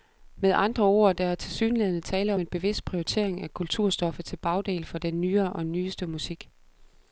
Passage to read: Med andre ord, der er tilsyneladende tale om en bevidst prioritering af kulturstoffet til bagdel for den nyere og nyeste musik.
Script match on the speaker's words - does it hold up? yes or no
no